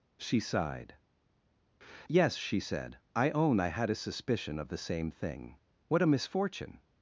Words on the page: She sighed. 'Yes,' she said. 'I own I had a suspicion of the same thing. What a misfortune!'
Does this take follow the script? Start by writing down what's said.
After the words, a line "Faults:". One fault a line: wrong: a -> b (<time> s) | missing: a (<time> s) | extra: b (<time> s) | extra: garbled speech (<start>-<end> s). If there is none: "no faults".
She sighed. 'Yes,' she said. 'I own I had a suspicion of the same thing. What a misfortune!'
Faults:
no faults